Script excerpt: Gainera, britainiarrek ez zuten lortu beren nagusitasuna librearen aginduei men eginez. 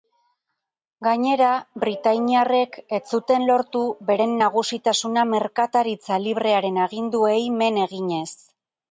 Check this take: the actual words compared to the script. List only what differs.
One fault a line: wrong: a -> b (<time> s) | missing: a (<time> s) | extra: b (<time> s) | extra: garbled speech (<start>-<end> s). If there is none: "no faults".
extra: merkataritza (5.3 s)